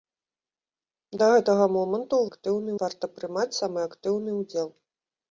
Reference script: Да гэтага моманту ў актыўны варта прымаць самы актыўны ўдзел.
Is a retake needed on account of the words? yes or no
no